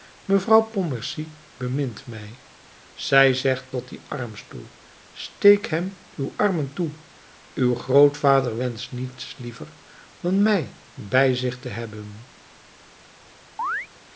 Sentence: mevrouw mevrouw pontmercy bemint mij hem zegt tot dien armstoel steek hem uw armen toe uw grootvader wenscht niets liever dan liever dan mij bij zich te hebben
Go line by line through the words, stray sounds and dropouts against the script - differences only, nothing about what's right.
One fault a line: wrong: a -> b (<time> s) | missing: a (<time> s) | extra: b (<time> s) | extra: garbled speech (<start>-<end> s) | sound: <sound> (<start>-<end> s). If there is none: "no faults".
missing: mevrouw (0.6 s)
wrong: hem -> zij (2.9 s)
missing: liever dan (10.4 s)
sound: chirp (13.6-13.9 s)